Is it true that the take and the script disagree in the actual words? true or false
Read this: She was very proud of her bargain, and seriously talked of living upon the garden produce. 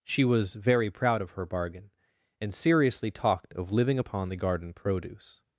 false